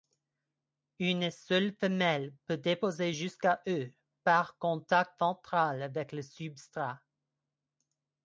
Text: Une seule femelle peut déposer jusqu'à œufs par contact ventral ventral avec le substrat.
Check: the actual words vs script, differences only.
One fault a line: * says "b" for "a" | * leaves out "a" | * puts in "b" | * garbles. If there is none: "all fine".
* leaves out "ventral"